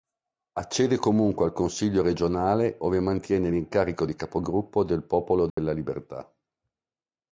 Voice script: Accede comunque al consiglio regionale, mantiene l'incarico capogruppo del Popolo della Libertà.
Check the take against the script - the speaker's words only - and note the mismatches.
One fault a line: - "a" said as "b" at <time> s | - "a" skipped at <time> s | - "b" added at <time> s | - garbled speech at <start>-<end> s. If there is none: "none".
- "ove" added at 2.8 s
- "di" added at 4.0 s